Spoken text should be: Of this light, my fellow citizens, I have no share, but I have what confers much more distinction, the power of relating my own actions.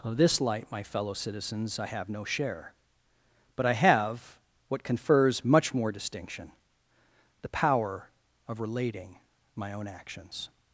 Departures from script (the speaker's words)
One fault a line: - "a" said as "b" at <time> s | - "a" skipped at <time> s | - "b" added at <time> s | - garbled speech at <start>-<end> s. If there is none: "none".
none